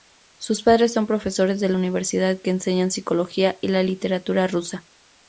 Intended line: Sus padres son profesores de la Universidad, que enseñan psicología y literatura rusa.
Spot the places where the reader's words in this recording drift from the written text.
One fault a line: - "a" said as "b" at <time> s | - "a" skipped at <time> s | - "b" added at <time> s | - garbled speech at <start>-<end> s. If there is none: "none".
- "la" added at 3.7 s